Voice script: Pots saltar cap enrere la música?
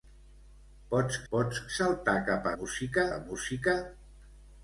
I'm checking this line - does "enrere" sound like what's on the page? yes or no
no